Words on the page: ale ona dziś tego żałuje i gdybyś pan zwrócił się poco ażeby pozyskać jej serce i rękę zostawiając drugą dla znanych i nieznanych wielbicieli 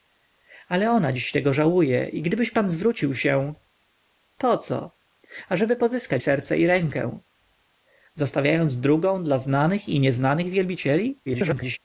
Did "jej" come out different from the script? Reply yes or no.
yes